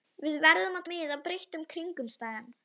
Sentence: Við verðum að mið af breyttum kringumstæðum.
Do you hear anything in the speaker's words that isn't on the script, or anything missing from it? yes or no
no